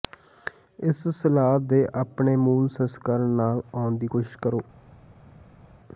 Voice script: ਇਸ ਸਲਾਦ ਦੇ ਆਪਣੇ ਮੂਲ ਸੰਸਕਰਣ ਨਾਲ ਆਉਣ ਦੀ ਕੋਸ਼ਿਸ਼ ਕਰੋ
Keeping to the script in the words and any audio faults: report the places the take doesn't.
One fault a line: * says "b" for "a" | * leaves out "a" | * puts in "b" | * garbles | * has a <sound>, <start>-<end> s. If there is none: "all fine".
all fine